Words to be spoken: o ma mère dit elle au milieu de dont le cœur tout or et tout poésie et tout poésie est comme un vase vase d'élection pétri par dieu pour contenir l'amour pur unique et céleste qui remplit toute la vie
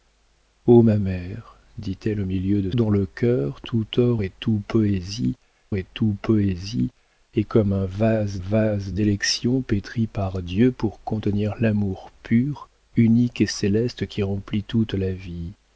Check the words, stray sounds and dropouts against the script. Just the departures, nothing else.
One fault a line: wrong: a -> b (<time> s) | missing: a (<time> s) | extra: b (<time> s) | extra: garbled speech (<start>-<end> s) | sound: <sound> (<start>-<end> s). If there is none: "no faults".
no faults